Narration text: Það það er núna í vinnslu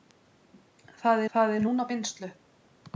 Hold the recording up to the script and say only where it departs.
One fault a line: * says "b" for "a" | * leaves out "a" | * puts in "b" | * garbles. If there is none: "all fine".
all fine